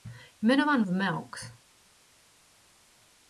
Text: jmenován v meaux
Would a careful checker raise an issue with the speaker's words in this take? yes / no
no